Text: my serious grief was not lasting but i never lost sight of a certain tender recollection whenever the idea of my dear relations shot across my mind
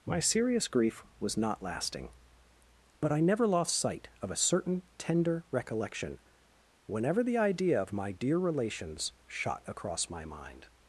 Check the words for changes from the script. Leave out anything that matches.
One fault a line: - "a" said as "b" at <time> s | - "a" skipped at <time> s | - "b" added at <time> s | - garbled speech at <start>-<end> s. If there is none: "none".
none